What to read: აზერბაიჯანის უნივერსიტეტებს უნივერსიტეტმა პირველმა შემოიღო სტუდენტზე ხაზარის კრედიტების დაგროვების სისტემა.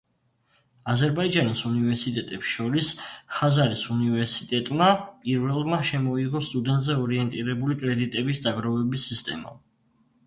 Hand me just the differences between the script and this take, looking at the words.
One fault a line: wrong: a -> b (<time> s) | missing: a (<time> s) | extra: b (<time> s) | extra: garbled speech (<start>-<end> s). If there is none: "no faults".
extra: შორის ხაზარის (2.5 s)
wrong: ხაზარის -> ორიენტირებული (7.0 s)